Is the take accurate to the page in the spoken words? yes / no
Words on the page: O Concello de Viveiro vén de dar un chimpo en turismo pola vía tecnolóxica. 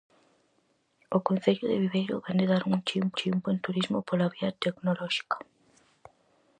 no